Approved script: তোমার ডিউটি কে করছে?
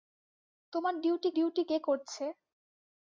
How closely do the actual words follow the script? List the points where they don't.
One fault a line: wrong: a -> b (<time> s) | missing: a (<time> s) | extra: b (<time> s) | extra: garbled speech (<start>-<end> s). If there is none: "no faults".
extra: ডিউটি (1.4 s)